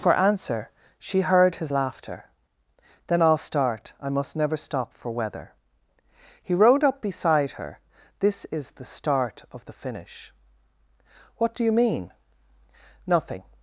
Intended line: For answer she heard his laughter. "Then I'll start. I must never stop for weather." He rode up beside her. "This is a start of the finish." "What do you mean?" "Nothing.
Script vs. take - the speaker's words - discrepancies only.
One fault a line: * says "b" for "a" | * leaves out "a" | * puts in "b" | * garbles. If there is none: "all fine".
* says "the" for "a"